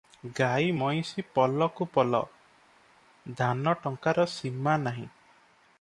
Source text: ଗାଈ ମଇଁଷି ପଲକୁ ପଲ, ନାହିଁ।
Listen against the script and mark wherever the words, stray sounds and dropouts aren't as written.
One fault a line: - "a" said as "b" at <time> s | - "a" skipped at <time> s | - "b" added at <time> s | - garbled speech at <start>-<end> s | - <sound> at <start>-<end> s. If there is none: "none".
- "ଧାନ ଟଙ୍କାର ସୀମା" added at 3.3 s